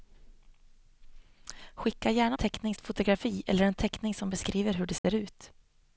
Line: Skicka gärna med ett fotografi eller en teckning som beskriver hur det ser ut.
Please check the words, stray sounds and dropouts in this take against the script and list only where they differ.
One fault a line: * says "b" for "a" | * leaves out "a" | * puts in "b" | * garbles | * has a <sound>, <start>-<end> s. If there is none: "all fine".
* says "teckning" for "med"
* has a dropout, 5.0-5.0 s